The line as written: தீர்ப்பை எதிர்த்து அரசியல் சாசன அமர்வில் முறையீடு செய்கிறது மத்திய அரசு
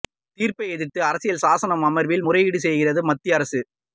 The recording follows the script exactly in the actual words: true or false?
true